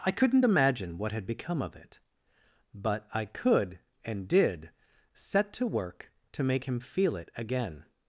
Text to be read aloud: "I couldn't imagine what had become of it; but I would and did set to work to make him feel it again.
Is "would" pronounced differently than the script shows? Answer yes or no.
yes